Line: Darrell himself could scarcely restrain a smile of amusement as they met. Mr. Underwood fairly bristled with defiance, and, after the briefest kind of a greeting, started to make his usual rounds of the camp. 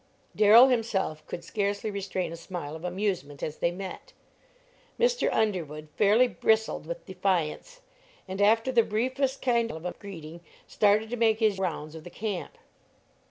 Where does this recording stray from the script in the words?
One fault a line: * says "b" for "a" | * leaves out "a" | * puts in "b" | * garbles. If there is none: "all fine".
* leaves out "usual"